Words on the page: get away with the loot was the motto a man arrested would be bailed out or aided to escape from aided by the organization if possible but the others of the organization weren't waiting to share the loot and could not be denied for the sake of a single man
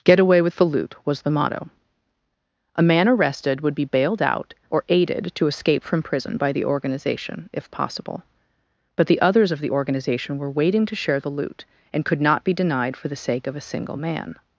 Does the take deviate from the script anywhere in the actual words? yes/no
yes